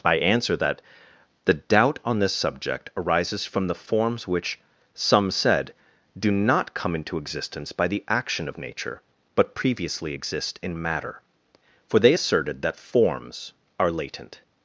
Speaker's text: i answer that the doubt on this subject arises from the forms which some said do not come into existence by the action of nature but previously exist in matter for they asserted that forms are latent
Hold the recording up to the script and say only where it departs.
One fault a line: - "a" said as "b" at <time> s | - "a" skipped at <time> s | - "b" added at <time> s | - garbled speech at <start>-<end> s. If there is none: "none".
none